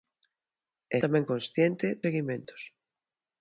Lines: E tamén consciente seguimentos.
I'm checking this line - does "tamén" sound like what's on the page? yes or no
yes